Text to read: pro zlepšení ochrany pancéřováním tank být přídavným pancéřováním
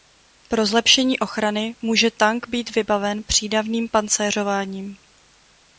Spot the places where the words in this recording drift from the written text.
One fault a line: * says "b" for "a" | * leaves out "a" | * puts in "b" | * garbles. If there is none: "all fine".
* says "může" for "pancéřováním"
* puts in "vybaven"